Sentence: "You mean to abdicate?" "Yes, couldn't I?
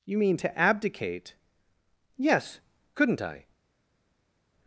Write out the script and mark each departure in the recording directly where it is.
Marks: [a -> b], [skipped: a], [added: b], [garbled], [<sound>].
"You mean to abdicate?" "Yes, couldn't I?